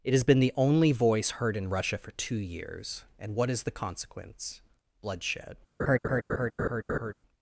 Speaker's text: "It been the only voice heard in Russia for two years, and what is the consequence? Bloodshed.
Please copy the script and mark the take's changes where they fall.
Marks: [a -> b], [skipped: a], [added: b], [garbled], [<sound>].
"It [added: has] been the only voice heard in Russia for two years, and what is the consequence? Bloodshed. [laugh]